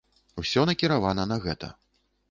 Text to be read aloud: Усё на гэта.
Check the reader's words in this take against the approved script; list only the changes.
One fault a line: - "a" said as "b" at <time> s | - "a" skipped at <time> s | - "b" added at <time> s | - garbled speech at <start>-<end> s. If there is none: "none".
- "накіравана" added at 0.7 s